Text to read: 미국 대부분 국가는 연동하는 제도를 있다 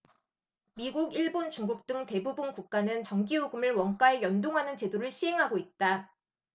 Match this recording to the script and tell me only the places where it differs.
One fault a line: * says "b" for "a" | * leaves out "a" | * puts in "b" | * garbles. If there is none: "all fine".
* puts in "일본 중국 등"
* puts in "전기요금을 원가에"
* puts in "시행하고"